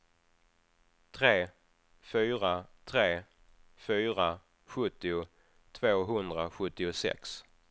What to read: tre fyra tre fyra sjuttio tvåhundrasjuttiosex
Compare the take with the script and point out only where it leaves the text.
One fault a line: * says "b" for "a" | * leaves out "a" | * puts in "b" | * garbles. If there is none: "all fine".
all fine